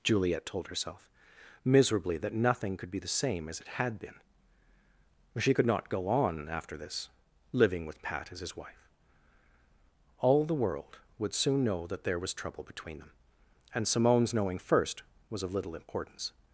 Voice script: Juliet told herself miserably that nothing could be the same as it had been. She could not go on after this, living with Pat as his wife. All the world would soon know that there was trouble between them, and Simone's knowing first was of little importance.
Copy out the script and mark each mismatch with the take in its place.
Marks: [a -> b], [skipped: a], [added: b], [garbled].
Juliet told herself miserably that nothing could be the same as it had been. She could not go on after this, living with Pat as his wife. All the world would soon know that there was trouble between them, and Simone's knowing first was of little importance.